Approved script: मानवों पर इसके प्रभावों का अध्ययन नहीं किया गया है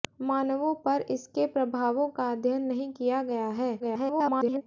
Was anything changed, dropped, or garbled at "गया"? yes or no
no